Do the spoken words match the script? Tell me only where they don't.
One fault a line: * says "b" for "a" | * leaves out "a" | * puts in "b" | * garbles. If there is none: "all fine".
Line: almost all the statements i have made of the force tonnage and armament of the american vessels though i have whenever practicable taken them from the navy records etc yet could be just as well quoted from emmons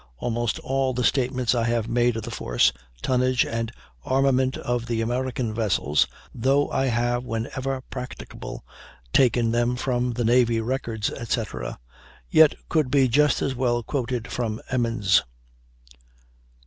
all fine